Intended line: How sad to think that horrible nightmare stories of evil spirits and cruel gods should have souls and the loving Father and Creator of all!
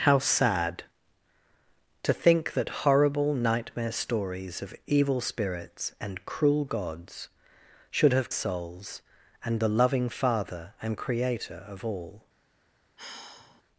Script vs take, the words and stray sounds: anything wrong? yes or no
yes